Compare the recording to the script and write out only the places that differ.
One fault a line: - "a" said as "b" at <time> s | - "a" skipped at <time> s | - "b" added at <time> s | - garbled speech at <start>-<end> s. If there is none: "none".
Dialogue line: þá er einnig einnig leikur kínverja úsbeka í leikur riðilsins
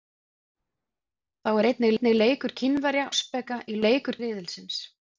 none